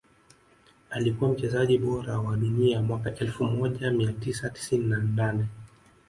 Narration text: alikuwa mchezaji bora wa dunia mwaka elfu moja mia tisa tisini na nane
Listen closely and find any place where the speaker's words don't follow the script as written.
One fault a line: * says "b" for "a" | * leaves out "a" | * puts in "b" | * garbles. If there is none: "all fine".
all fine